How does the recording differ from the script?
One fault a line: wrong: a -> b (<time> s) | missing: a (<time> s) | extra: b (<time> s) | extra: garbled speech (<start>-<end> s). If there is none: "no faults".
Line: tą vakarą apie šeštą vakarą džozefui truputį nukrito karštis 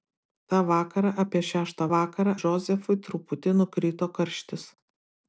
no faults